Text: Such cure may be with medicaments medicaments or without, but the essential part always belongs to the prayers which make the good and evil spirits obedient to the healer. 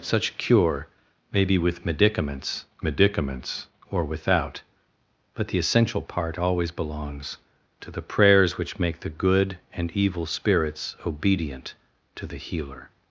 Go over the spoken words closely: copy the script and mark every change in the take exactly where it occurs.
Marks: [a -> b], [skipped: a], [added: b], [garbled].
Such cure may be with medicaments medicaments or without, but the essential part always belongs to the prayers which make the good and evil spirits obedient to the healer.